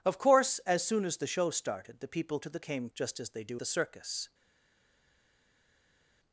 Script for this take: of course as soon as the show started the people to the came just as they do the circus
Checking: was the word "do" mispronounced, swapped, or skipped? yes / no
no